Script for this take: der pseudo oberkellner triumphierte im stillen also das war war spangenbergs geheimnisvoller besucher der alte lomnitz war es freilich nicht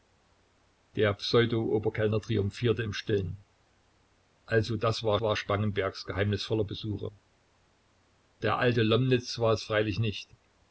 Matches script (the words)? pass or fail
pass